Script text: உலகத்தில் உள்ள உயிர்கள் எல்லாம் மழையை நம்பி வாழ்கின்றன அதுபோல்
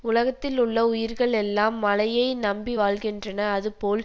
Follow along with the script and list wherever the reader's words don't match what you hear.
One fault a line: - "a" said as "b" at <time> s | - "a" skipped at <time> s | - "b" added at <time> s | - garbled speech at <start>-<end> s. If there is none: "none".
none